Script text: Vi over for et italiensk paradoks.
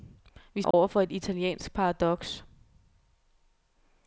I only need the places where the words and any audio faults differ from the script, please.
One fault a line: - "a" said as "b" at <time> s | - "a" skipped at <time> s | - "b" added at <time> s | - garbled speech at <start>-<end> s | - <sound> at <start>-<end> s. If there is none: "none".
- dropout at 0.7-0.7 s